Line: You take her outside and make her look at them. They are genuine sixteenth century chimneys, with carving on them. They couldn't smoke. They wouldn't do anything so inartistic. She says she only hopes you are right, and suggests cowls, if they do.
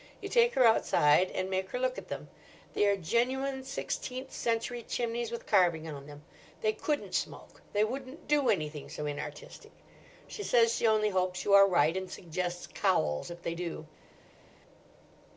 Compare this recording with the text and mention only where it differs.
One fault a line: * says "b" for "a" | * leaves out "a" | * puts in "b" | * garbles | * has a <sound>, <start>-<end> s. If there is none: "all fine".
all fine